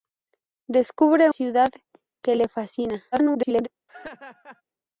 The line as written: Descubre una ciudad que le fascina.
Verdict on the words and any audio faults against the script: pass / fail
fail